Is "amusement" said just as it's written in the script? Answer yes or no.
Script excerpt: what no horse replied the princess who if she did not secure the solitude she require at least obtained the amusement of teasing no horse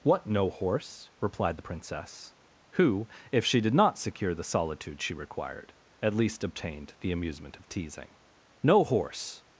yes